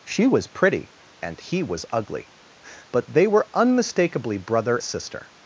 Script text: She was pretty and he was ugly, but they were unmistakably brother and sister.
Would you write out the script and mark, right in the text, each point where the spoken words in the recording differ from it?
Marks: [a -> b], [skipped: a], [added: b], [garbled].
She was pretty and he was ugly, but they were unmistakably brother [skipped: and] sister.